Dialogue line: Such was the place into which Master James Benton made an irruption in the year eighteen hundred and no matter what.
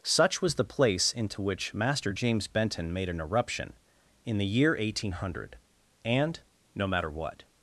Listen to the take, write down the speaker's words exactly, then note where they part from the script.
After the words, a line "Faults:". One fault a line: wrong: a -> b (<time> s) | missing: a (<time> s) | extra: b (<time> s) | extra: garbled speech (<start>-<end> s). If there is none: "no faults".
Such was the place into which Master James Benton made an irruption in the year eighteen hundred and no matter what.
Faults:
no faults